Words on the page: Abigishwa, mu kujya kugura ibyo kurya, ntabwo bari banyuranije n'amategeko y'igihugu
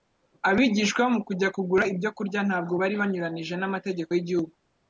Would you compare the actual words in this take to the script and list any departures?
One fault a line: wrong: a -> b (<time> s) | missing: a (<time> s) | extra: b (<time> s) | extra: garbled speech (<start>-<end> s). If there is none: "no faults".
no faults